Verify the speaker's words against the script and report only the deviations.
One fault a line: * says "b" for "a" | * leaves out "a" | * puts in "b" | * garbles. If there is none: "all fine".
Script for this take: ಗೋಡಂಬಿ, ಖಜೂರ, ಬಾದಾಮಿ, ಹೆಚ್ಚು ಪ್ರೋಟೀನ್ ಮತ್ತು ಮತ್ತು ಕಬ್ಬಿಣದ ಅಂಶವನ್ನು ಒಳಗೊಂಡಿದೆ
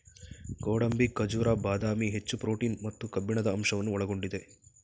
* leaves out "ಮತ್ತು"